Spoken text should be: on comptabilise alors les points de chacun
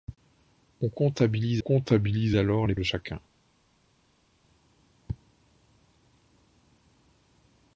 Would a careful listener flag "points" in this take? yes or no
yes